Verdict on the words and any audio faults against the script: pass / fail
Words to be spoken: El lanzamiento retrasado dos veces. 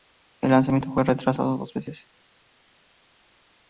fail